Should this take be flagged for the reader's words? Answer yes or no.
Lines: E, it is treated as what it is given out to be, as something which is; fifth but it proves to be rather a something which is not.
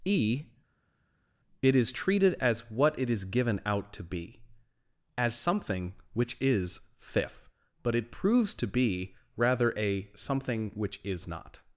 no